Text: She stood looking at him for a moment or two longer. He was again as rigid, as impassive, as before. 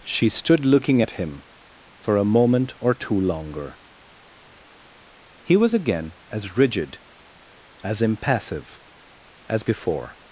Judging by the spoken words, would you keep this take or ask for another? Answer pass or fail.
pass